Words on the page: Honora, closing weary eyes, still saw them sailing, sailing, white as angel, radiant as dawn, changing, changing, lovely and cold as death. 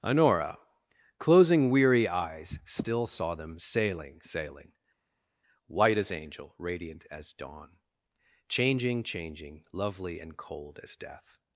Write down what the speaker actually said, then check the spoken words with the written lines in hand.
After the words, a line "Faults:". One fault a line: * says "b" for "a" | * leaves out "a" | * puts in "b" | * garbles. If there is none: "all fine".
Honora, closing weary eyes, still saw them sailing, sailing, white as angel, radiant as dawn, changing, changing, lovely and cold as death.
Faults:
all fine